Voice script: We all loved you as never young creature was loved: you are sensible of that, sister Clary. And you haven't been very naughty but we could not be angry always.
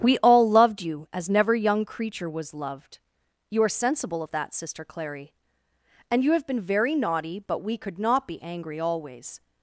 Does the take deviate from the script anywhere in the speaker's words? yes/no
yes